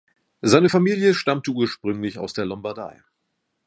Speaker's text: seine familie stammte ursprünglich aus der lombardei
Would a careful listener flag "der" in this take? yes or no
no